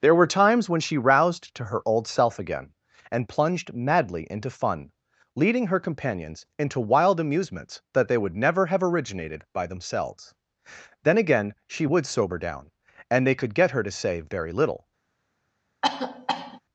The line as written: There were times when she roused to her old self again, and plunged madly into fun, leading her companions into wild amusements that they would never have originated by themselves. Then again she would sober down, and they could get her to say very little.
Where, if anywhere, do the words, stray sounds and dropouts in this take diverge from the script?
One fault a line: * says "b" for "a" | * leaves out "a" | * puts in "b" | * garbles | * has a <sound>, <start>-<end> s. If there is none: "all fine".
* has a cough, 15.8-16.6 s